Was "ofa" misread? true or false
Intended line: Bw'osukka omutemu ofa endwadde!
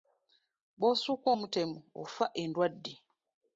false